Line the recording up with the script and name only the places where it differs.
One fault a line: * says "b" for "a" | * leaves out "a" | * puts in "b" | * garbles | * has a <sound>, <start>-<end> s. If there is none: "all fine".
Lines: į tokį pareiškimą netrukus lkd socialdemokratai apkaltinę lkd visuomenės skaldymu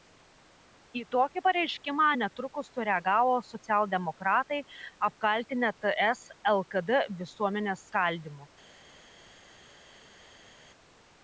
* says "sureagavo" for "lkd"
* puts in "ts"